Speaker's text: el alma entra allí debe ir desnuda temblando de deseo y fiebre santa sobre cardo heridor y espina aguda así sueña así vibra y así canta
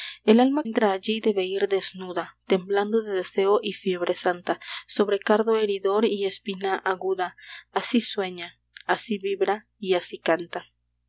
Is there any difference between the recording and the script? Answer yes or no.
no